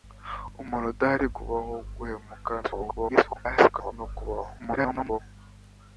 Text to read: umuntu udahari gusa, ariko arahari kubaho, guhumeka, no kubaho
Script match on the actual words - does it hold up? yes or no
no